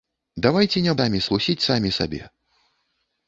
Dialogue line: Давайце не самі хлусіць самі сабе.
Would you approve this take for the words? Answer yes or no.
yes